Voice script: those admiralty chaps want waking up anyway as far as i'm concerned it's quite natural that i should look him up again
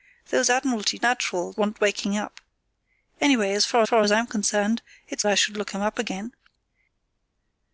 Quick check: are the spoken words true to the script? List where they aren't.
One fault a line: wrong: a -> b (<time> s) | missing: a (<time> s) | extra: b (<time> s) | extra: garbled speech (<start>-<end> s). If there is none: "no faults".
wrong: chaps -> natural (1.0 s)
extra: far (3.8 s)
missing: quite natural that (5.2 s)